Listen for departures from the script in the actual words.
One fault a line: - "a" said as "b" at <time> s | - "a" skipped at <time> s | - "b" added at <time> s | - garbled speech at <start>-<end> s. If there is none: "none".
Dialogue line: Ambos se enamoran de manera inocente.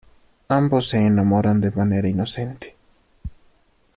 none